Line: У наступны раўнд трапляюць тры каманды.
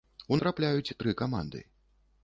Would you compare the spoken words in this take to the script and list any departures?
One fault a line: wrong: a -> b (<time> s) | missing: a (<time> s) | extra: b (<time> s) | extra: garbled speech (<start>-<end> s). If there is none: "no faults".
missing: наступны раўнд (0.4 s)